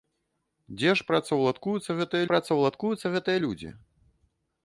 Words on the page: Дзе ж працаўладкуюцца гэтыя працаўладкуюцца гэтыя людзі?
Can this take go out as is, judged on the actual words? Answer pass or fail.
pass